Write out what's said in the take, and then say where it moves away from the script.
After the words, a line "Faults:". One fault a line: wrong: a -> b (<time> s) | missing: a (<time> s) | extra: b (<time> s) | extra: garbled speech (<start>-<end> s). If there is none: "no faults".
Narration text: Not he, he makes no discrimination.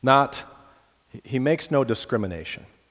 Not he, makes no discrimination.
Faults:
missing: he (1.4 s)